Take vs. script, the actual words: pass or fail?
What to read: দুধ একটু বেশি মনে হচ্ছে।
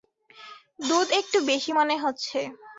pass